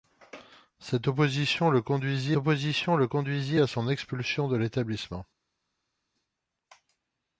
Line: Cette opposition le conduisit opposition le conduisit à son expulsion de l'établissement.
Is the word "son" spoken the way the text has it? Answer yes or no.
yes